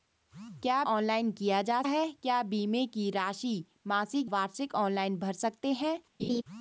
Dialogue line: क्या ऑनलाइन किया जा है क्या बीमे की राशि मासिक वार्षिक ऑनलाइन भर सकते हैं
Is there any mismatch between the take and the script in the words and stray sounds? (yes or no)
yes